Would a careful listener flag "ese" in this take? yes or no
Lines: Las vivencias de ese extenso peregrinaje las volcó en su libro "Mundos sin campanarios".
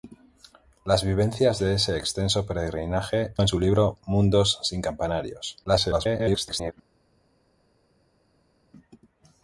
no